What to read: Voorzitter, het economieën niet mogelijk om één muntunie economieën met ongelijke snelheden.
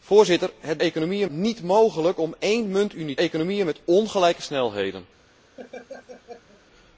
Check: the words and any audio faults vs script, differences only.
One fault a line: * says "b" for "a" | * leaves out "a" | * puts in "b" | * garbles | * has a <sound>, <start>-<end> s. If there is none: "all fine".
* has a laugh, 5.6-6.6 s